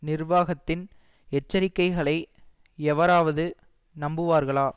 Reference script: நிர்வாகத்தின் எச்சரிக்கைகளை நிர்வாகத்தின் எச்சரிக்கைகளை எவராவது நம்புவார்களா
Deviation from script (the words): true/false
true